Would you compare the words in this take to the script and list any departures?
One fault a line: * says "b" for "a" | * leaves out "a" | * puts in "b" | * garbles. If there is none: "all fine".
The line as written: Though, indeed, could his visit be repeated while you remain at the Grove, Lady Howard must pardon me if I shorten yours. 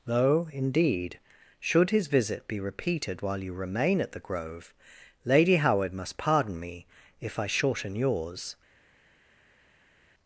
* says "should" for "could"